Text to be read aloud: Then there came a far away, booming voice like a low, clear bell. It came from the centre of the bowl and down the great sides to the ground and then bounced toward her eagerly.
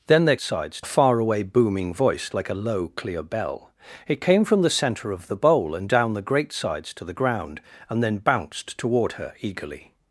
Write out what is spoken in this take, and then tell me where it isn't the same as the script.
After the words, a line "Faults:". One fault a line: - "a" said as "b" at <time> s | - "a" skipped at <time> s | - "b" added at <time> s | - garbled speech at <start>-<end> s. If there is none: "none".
Then there sides a far away, booming voice like a low, clear bell. It came from the centre of the bowl and down the great sides to the ground and then bounced toward her eagerly.
Faults:
- "came" said as "sides" at 0.4 s